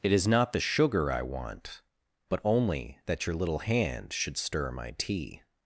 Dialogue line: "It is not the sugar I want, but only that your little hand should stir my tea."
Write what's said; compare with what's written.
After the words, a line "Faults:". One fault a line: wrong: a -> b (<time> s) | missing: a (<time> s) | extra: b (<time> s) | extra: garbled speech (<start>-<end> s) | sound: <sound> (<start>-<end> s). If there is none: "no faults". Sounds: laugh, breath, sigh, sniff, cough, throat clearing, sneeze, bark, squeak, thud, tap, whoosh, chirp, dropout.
"It is not the sugar I want, but only that your little hand should stir my tea."
Faults:
no faults